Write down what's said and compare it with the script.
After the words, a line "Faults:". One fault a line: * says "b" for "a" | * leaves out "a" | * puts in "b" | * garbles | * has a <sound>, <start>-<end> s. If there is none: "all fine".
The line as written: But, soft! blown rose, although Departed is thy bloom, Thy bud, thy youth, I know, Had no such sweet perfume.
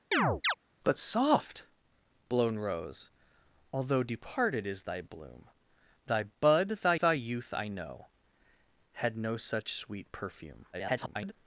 But, soft! blown rose, although Departed is thy bloom, Thy bud, thy thy youth, I know, Had no such sweet perfume. [garbled]
Faults:
* has a chirp, 0.1-0.5 s
* puts in "thy"
* garbles